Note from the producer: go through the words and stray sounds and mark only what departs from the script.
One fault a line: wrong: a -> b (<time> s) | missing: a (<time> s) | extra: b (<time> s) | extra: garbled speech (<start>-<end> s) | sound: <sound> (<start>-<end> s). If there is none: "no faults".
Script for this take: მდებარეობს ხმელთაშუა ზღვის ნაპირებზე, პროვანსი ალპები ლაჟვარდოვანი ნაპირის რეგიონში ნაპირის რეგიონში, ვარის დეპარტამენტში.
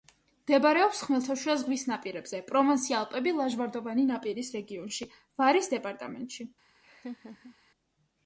missing: ნაპირის რეგიონში (5.1 s)
sound: laugh (6.8-7.6 s)